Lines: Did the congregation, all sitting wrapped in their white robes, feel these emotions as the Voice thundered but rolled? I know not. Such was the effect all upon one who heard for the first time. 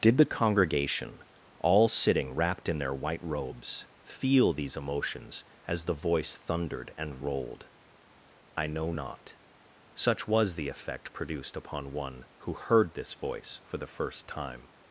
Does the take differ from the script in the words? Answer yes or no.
yes